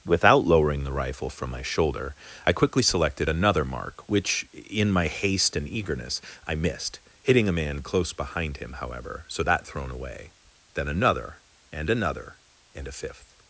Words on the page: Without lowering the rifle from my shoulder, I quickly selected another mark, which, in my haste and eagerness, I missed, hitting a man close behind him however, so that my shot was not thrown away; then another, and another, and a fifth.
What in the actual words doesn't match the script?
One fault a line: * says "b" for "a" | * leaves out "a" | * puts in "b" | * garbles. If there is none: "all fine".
* leaves out "my shot was not"